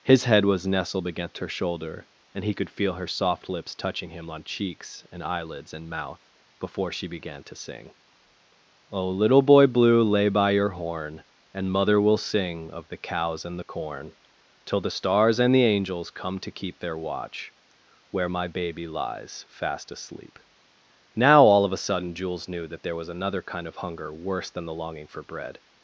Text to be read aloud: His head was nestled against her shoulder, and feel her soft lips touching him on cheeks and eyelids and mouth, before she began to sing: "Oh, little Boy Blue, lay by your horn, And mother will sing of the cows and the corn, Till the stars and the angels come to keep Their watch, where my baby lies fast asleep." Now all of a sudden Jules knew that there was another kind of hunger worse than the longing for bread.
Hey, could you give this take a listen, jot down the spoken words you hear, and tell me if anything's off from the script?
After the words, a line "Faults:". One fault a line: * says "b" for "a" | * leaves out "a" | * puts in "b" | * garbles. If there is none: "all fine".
His head was nestled against her shoulder, and he could feel her soft lips touching him on cheeks and eyelids and mouth, before she began to sing: "Oh, little Boy Blue, lay by your horn, And mother will sing of the cows and the corn, Till the stars and the angels come to keep Their watch, where my baby lies fast asleep." Now all of a sudden Jules knew that there was another kind of hunger worse than the longing for bread.
Faults:
* puts in "he could"